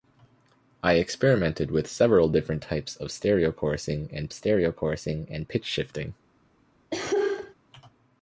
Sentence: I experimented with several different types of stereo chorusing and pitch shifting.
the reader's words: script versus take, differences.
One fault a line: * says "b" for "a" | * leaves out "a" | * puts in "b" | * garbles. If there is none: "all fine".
* puts in "stereo chorusing and"